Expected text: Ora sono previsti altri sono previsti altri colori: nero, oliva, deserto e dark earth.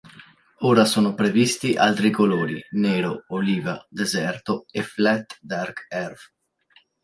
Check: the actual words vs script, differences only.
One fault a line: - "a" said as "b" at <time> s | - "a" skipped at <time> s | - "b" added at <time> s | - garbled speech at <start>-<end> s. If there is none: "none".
- "sono previsti altri" skipped at 2.1 s
- "flat" added at 4.8 s